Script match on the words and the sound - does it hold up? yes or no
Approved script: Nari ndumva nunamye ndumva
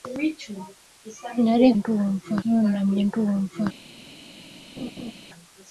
no